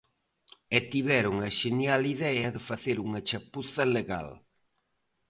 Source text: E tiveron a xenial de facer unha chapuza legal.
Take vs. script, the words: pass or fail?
fail